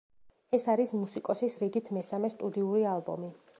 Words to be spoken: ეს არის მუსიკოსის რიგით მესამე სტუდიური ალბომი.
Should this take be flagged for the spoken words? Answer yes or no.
no